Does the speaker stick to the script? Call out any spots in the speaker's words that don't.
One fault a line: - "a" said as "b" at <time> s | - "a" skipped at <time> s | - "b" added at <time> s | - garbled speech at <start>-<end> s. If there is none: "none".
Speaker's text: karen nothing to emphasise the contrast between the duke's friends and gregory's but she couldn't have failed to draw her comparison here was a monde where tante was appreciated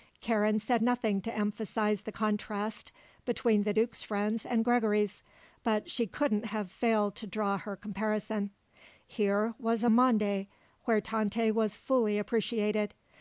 - "said" added at 0.6 s
- "fully" added at 11.8 s